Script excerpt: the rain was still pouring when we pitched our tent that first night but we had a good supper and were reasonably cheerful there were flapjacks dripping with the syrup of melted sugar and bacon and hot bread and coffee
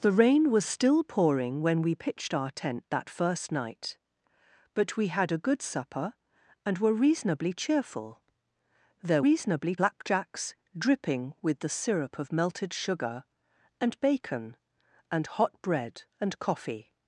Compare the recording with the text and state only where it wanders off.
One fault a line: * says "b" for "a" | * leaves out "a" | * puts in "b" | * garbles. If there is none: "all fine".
* says "reasonably" for "were"